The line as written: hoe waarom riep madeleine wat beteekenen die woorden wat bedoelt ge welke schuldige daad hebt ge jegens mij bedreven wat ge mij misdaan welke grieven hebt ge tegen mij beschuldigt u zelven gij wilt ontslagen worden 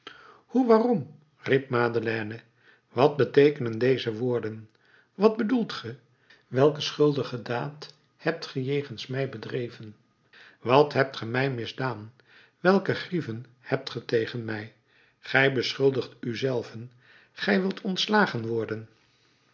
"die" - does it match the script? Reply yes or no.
no